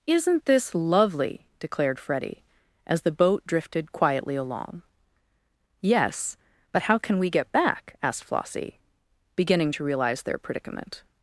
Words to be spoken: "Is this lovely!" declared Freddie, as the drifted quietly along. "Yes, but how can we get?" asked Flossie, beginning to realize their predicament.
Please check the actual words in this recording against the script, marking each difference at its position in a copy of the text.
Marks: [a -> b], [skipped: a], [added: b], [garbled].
["Is -> Isn't] this lovely!" declared Freddie, as the [added: boat] drifted quietly along. "Yes, but how can we get?" [added: back] asked Flossie, beginning to realize their predicament.